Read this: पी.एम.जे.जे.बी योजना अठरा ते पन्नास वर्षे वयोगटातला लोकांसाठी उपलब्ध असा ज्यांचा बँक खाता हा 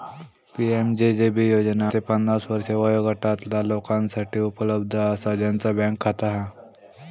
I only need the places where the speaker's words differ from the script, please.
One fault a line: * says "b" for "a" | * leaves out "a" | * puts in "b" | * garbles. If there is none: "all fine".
* leaves out "अठरा"